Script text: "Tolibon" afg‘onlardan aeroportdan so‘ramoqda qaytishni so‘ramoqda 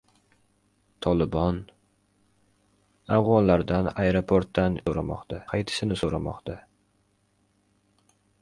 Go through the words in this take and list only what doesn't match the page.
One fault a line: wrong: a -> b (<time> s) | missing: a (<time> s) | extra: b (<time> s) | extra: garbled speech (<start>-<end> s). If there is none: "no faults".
no faults